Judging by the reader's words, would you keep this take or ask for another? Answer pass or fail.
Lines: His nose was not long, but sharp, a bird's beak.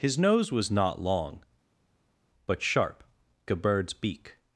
pass